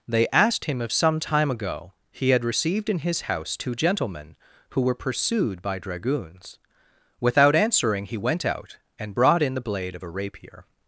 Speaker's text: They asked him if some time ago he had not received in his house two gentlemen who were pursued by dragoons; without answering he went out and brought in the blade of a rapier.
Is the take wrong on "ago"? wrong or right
right